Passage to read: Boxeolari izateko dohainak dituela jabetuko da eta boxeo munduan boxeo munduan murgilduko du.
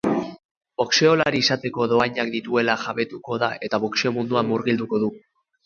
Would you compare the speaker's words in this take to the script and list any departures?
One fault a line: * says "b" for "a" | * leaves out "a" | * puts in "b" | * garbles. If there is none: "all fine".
* leaves out "boxeo munduan"